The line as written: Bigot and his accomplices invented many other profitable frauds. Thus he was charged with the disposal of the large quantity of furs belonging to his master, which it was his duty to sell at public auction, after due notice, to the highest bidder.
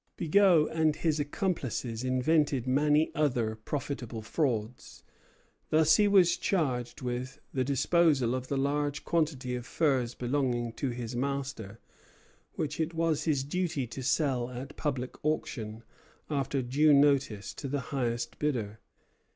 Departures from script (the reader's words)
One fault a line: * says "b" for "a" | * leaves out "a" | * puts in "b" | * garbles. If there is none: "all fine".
all fine